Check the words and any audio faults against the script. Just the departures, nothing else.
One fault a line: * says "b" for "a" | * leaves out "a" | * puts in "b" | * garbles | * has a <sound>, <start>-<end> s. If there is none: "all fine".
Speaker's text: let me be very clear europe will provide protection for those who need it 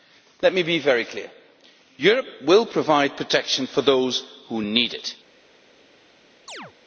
* has a chirp, 6.5-6.7 s